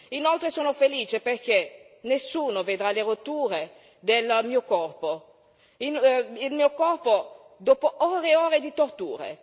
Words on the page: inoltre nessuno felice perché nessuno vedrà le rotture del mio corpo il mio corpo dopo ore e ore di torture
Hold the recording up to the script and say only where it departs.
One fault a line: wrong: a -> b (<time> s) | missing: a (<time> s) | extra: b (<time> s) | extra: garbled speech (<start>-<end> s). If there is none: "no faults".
wrong: nessuno -> sono (0.5 s)